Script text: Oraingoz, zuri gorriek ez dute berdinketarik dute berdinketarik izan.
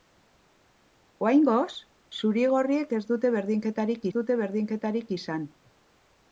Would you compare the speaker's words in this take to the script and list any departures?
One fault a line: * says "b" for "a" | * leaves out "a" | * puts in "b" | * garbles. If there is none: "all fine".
all fine